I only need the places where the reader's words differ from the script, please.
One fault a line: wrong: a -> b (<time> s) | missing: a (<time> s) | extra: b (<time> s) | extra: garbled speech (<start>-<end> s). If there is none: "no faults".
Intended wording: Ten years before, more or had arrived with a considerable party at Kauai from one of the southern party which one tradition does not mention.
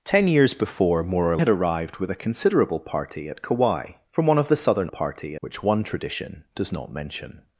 no faults